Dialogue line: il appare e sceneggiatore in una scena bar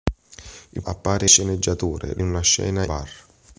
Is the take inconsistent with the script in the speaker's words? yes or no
no